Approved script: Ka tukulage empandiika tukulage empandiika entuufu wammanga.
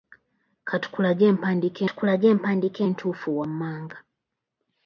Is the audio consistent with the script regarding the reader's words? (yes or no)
yes